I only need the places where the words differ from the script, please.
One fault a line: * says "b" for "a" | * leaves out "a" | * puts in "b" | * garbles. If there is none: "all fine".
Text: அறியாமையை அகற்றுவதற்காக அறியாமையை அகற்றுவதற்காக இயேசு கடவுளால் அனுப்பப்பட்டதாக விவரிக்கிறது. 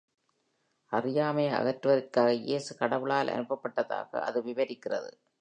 * leaves out "அறியாமையை அகற்றுவதற்காக"
* puts in "அது"